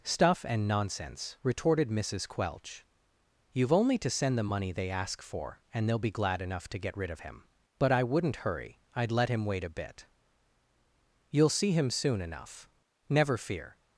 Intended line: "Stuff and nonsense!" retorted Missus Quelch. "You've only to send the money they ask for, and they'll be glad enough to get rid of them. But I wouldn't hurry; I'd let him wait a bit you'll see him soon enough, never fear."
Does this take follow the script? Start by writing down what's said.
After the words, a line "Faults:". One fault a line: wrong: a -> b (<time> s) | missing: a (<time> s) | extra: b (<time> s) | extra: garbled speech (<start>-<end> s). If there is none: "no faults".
"Stuff and nonsense!" retorted Missus Quelch. "You've only to send the money they ask for, and they'll be glad enough to get rid of him. But I wouldn't hurry; I'd let him wait a bit you'll see him soon enough, never fear."
Faults:
wrong: them -> him (7.2 s)